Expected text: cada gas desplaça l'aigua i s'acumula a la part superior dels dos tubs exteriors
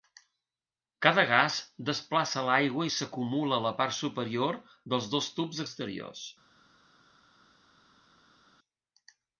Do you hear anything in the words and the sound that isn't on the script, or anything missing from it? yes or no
no